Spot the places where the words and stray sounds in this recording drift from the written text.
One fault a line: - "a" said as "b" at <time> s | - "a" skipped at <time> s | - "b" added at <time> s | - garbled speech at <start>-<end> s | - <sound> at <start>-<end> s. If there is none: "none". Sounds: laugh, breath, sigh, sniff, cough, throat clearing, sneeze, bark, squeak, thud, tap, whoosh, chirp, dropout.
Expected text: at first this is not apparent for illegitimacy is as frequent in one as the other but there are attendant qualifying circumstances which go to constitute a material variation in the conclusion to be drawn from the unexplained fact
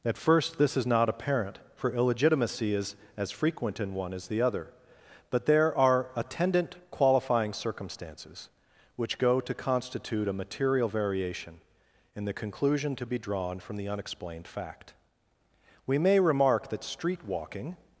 - "we may remark that street walking" added at 15.8 s